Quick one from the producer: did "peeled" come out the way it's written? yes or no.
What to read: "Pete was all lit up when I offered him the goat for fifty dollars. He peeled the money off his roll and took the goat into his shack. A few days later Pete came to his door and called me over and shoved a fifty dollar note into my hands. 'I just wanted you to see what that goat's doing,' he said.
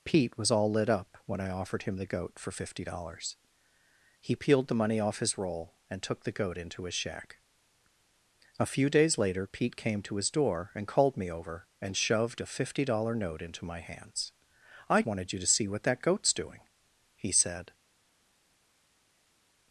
yes